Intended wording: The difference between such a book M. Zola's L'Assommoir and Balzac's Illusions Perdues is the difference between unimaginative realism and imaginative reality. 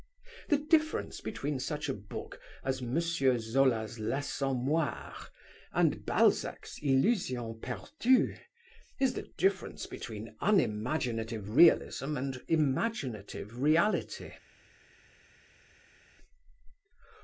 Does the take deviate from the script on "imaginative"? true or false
false